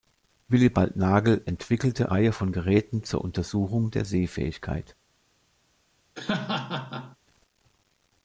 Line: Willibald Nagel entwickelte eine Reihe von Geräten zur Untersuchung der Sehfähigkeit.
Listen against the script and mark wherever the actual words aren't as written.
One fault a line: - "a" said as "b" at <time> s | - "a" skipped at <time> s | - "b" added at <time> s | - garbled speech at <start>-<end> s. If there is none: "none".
- "eine" skipped at 2.1 s